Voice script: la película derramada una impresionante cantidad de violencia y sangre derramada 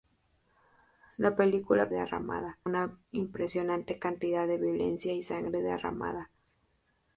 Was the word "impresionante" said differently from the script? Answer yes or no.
no